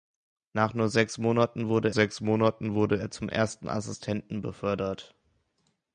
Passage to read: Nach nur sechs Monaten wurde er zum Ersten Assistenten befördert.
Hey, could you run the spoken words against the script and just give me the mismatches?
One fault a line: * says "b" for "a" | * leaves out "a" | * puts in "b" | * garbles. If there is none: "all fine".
* puts in "sechs Monaten wurde"